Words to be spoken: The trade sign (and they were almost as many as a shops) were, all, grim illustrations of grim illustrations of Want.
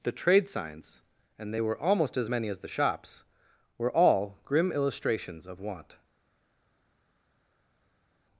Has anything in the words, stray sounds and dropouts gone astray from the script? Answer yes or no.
yes